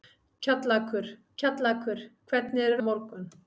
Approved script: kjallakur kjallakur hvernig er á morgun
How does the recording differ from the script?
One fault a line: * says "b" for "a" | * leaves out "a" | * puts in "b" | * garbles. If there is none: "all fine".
all fine